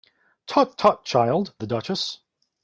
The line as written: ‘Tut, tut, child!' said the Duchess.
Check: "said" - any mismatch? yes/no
yes